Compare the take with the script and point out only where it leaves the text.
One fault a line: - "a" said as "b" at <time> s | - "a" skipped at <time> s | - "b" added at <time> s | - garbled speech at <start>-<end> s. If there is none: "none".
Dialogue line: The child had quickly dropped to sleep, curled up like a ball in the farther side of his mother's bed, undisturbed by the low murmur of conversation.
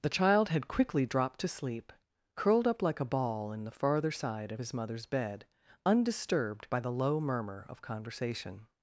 none